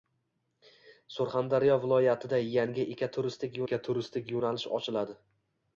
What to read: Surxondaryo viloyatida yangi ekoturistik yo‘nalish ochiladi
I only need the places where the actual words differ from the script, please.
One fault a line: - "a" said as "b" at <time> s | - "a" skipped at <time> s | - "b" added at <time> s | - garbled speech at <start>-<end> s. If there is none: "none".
- "ekoturistik" added at 3.7 s